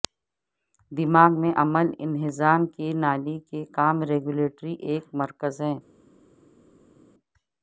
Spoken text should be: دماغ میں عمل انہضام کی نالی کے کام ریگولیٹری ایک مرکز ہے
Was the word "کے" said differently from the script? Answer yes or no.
no